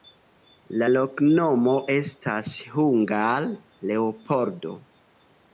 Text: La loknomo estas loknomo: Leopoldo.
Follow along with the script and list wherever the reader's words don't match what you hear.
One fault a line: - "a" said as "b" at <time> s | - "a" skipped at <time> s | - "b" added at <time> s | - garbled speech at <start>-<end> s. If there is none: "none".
- "loknomo" said as "hungare" at 2.8 s